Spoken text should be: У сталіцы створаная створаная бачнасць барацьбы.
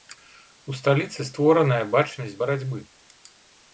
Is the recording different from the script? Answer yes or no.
yes